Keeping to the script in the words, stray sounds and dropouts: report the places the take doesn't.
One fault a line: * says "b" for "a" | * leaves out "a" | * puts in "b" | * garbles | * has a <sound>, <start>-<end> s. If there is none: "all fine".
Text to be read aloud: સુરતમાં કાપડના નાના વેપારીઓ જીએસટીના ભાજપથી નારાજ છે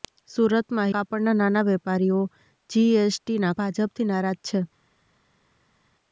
all fine